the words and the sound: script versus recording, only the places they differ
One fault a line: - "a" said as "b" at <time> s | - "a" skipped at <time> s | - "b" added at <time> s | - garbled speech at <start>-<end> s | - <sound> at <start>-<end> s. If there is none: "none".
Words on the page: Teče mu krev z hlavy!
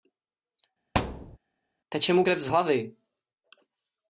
- thud at 0.9-1.4 s